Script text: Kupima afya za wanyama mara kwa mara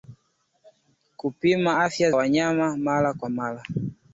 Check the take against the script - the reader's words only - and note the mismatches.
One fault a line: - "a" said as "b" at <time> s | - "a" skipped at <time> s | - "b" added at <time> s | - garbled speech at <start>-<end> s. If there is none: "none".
- "za" skipped at 2.1 s